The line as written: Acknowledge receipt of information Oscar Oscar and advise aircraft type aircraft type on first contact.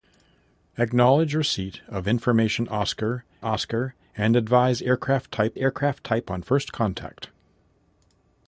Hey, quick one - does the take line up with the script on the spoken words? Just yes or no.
yes